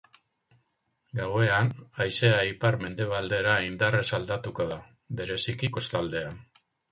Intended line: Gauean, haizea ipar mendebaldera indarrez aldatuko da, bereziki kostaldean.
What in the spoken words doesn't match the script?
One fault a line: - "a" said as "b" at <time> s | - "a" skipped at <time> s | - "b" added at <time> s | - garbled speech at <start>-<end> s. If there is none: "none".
none